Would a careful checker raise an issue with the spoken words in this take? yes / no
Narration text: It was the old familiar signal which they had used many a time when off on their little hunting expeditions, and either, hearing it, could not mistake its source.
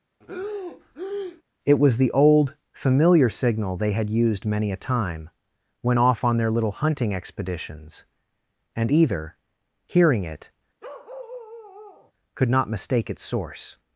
yes